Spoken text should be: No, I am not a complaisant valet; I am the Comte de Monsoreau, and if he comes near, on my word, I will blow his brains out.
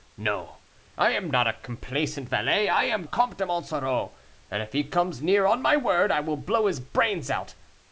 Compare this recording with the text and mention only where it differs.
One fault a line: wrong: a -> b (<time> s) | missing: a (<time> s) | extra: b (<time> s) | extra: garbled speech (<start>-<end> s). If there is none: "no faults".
missing: the (3.0 s)